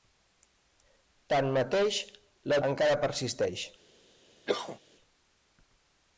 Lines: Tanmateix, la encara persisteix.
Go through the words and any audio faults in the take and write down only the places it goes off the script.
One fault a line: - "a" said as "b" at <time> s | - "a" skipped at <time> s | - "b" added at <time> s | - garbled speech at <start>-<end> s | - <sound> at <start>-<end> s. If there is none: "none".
- cough at 4.5-4.8 s